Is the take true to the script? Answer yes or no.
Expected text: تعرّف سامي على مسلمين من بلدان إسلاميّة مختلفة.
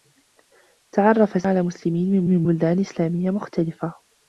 no